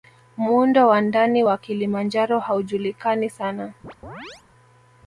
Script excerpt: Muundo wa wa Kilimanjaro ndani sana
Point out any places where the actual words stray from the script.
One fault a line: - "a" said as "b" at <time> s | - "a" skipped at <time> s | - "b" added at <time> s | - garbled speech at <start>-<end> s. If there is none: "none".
- "ndani" added at 1.0 s
- "ndani" said as "haujulikani" at 2.4 s